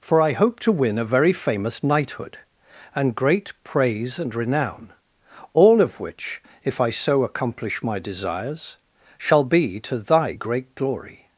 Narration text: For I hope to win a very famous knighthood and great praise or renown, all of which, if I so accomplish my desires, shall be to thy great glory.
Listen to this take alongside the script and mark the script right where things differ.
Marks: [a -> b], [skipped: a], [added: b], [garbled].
For I hope to win a very famous knighthood and great praise [or -> and] renown, all of which, if I so accomplish my desires, shall be to thy great glory.